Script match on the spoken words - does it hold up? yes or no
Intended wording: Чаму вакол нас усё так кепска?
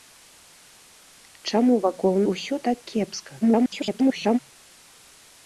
no